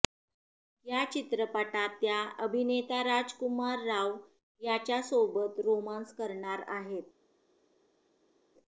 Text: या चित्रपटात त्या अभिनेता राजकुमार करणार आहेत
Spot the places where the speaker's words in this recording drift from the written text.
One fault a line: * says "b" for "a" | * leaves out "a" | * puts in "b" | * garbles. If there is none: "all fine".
* puts in "राव याच्यासोबत रोमान्स"